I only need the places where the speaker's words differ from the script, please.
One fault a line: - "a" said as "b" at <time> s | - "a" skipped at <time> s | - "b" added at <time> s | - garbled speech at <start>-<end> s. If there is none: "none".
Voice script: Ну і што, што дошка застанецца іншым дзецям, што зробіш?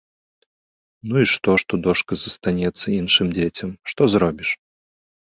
none